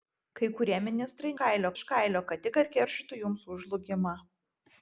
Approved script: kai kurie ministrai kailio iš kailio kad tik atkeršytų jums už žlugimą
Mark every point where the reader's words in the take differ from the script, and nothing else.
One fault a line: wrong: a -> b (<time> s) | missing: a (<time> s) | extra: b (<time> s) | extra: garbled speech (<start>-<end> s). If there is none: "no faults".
no faults